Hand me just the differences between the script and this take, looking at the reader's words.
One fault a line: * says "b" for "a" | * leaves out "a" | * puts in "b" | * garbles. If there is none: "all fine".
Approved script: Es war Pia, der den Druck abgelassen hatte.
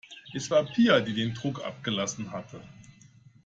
* says "die" for "der"